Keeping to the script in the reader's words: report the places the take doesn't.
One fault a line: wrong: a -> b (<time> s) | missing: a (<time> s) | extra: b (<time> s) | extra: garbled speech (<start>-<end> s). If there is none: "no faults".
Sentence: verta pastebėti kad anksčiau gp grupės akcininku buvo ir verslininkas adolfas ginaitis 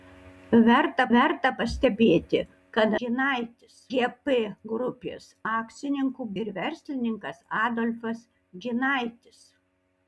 extra: verta (1.1 s)
wrong: anksčiau -> ginaitis (3.0 s)
missing: buvo (6.3 s)